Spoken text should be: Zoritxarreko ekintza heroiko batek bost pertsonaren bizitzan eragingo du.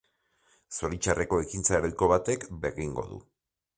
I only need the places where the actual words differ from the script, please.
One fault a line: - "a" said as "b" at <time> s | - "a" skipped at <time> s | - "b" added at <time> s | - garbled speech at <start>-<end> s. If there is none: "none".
- "bost pertsonaren bizitzan" skipped at 2.5 s